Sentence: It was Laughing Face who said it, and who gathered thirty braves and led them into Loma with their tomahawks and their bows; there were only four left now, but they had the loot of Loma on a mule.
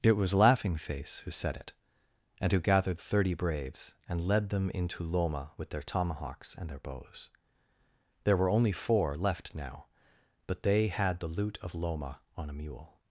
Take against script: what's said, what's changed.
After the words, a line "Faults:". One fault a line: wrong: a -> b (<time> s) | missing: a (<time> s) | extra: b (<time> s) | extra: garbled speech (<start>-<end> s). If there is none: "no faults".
It was Laughing Face who said it, and who gathered thirty braves and led them into Loma with their tomahawks and their bows; there were only four left now, but they had the loot of Loma on a mule.
Faults:
no faults